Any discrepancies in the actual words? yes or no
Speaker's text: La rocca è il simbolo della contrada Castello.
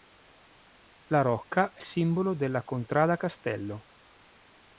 yes